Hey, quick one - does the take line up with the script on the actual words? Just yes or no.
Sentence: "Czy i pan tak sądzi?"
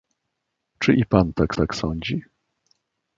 no